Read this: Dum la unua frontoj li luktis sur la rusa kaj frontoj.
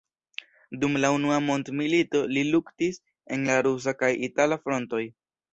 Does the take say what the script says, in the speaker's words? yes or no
no